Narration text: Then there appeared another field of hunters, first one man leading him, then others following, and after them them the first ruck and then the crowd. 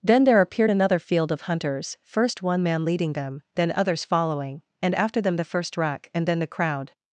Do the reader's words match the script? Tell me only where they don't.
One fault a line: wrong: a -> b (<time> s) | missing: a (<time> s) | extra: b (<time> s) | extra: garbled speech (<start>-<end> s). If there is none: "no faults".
wrong: him -> them (3.1 s)
missing: them (5.4 s)